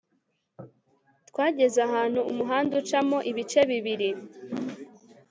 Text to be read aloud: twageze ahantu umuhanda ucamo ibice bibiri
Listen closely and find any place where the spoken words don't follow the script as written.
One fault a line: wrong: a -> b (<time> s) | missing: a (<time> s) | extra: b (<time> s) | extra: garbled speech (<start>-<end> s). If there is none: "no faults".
no faults